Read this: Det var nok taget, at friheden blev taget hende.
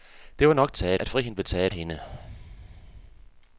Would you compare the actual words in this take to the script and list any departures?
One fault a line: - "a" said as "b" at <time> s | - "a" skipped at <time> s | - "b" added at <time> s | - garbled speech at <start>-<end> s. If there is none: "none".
none